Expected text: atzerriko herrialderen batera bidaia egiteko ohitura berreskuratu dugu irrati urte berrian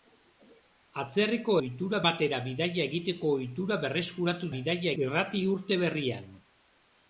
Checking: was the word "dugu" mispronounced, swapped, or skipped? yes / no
yes